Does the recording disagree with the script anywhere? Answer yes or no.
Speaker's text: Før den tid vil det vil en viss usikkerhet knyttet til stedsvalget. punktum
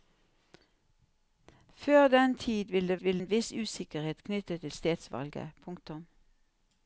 no